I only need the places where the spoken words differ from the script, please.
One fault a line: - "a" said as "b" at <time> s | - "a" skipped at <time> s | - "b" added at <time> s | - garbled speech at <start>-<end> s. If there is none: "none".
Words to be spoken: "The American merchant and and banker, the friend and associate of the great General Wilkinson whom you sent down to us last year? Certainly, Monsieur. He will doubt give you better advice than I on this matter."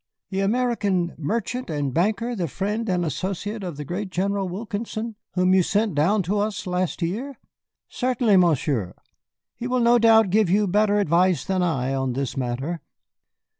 - "and" skipped at 1.9 s
- "no" added at 9.8 s